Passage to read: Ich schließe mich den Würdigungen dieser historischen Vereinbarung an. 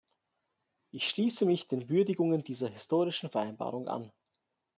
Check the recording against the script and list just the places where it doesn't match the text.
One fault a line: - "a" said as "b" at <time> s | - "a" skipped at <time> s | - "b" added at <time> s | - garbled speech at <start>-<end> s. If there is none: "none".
none